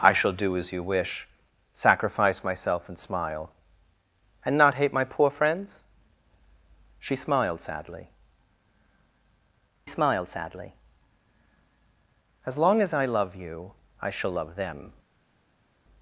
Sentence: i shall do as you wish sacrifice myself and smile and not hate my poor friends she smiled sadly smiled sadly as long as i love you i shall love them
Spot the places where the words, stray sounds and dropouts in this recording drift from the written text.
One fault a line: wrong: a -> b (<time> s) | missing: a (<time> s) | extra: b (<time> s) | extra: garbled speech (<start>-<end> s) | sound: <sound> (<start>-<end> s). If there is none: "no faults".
no faults